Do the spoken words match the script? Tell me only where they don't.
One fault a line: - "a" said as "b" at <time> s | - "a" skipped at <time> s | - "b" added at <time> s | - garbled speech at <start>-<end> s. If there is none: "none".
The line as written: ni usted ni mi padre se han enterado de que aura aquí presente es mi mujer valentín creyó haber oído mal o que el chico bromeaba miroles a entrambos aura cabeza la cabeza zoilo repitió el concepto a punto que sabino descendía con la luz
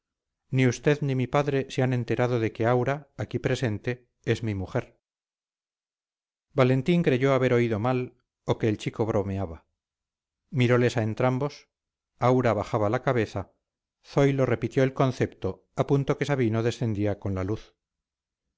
- "cabeza" said as "bajaba" at 12.5 s